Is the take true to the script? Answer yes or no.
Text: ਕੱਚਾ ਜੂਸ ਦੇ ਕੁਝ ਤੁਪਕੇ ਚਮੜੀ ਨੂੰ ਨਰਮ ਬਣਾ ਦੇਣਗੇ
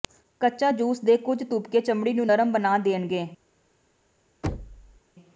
yes